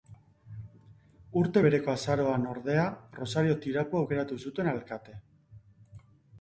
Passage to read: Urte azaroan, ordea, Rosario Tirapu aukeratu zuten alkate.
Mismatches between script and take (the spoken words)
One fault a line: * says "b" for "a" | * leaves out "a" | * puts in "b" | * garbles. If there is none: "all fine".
* puts in "bereko"